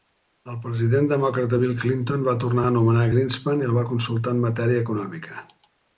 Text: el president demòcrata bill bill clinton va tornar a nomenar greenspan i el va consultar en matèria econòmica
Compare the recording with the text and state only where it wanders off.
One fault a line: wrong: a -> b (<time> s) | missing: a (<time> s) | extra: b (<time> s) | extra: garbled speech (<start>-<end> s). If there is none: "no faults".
missing: bill (1.7 s)